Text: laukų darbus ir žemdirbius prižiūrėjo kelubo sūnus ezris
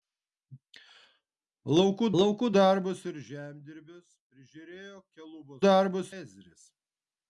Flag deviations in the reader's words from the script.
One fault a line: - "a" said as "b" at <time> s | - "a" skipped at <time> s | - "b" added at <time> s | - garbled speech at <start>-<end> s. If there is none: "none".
- "laukų" added at 2.2 s
- "sūnus" said as "darbus" at 5.6 s